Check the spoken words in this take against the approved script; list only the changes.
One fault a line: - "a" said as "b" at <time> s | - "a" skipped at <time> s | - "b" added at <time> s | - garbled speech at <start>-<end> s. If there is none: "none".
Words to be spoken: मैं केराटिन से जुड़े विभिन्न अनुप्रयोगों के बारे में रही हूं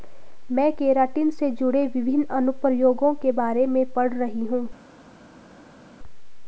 - "पढ़" added at 3.9 s